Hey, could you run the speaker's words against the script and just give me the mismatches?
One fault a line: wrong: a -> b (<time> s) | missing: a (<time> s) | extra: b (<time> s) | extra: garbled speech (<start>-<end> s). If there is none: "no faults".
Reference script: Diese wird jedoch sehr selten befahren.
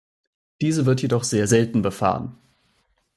no faults